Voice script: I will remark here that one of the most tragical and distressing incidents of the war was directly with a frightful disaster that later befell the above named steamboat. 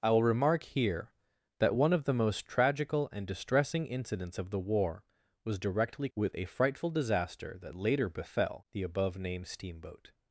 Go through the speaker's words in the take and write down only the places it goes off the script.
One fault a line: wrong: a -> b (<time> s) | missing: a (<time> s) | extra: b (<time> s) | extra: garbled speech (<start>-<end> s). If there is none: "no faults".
no faults